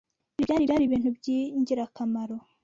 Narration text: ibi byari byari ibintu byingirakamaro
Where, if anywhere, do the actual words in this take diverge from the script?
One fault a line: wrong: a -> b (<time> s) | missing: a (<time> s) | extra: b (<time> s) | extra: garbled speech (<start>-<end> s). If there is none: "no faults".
no faults